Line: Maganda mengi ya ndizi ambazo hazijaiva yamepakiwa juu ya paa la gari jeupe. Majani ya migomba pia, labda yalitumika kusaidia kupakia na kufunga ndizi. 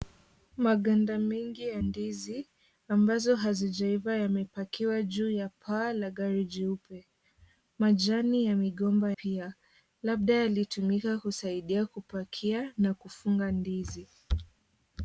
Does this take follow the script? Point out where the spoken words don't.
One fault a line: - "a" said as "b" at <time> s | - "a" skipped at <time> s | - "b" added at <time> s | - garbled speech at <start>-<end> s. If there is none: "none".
none